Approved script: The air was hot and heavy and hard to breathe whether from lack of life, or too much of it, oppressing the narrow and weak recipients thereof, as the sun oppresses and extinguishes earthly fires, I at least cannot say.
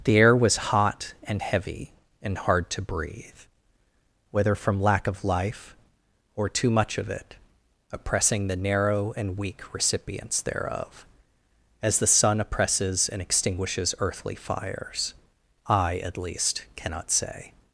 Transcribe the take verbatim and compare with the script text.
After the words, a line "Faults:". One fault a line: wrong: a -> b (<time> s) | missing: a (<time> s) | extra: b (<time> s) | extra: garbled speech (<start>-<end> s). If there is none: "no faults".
The air was hot and heavy and hard to breathe whether from lack of life, or too much of it, oppressing the narrow and weak recipients thereof, as the sun oppresses and extinguishes earthly fires, I at least cannot say.
Faults:
no faults